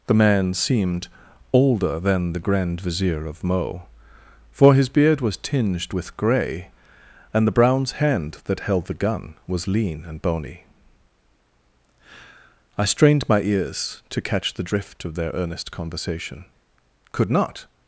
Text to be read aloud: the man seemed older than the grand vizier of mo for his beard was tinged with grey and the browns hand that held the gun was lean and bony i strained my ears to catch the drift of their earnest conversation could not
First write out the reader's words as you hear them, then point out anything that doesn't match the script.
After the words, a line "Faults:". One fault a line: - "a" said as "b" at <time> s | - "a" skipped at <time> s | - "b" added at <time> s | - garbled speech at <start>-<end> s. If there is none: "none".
the man seemed older than the grand vizier of mo for his beard was tinged with grey and the browns hand that held the gun was lean and bony i strained my ears to catch the drift of their earnest conversation could not
Faults:
none